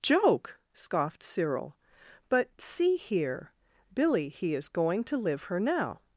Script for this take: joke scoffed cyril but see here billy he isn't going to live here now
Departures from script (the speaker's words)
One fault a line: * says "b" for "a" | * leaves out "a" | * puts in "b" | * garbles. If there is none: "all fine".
* says "is" for "isn't"
* says "her" for "here"